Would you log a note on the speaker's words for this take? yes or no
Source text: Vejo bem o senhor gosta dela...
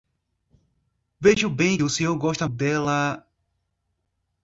no